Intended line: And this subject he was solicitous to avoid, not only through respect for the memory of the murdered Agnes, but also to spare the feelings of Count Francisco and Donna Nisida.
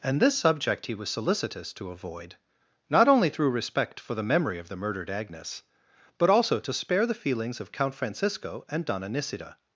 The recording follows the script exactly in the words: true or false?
true